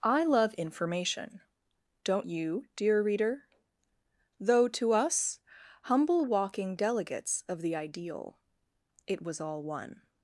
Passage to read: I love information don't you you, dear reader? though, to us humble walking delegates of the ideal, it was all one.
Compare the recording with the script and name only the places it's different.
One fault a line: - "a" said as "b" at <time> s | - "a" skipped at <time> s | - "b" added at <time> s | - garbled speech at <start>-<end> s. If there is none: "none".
- "you" skipped at 2.7 s